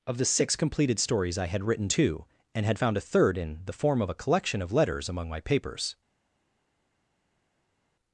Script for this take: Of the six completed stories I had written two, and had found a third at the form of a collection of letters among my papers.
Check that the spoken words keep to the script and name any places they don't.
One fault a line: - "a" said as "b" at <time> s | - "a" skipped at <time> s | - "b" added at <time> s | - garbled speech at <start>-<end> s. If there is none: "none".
- "at" said as "in" at 3.4 s